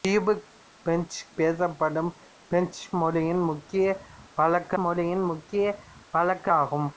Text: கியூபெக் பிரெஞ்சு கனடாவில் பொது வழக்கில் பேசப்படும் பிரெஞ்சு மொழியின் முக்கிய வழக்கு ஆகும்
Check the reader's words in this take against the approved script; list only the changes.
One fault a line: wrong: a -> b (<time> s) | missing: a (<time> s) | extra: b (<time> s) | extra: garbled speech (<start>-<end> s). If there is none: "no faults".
wrong: கனடாவில் பொது வழக்கில் பேசப்படும் பிரெஞ்சு -> பேசப்படும் பிரெஞ்சு மொழியின் முக்கிய வழக்கு (1.4 s)